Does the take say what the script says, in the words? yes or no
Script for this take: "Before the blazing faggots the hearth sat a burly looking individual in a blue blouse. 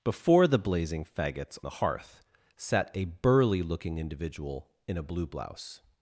yes